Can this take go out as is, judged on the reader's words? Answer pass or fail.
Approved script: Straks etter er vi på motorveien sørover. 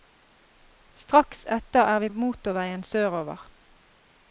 fail